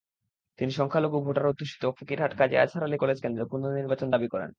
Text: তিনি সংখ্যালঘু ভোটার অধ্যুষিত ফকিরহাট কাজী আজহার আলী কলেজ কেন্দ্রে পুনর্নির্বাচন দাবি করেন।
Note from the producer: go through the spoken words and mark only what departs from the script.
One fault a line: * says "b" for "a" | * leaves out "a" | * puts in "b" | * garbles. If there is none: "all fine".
all fine